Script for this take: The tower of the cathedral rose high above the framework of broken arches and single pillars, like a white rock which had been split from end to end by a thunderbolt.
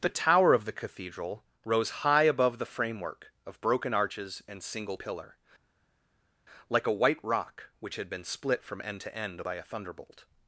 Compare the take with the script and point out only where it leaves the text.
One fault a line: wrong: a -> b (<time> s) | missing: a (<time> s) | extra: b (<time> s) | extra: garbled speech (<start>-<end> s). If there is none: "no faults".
wrong: pillars -> pillar (4.9 s)